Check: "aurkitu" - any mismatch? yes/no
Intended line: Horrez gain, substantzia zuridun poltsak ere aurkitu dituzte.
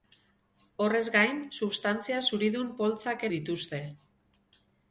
yes